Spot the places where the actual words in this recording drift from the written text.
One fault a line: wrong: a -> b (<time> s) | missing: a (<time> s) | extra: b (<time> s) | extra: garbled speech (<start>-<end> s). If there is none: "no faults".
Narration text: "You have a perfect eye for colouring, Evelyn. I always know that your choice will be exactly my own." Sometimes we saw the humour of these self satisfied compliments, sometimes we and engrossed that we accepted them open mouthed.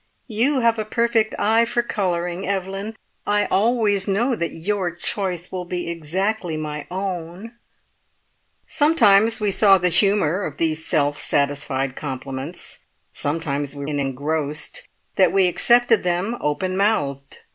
no faults